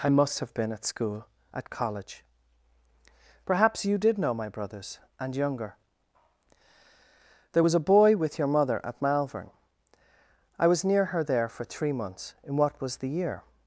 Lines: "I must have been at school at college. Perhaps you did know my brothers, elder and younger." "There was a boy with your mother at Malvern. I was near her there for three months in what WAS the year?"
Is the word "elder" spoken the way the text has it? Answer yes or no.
no